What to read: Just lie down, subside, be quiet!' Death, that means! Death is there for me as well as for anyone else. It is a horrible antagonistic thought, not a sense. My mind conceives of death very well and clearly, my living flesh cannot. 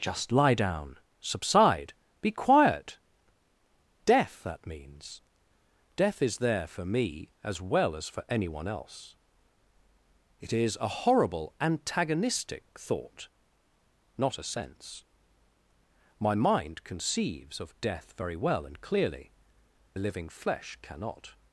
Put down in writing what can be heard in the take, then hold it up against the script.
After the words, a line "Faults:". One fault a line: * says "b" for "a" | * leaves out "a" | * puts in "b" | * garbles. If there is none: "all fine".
Just lie down, subside, be quiet!' Death, that means! Death is there for me as well as for anyone else. It is a horrible antagonistic thought, not a sense. My mind conceives of death very well and clearly, living flesh cannot.
Faults:
* leaves out "my"